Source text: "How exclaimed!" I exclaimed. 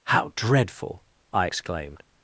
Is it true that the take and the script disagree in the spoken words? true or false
true